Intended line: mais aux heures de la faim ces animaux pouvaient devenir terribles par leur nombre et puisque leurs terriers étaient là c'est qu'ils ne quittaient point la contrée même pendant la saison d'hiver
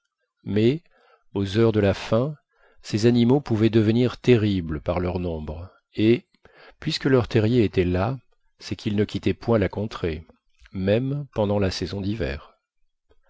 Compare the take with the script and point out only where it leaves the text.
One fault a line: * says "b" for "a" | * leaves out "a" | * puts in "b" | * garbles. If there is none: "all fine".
all fine